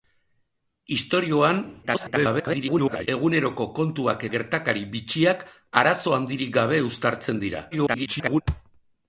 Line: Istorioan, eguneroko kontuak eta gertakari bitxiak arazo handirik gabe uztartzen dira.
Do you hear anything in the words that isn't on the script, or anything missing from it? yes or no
yes